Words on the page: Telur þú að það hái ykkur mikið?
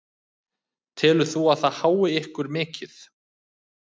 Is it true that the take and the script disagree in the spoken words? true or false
false